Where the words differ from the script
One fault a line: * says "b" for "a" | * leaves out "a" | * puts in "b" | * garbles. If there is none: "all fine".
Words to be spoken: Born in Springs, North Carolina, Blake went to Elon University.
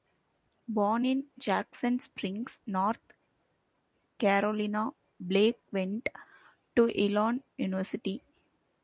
* puts in "Jackson"